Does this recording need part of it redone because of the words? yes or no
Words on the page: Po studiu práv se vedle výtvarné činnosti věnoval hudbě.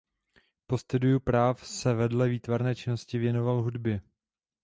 no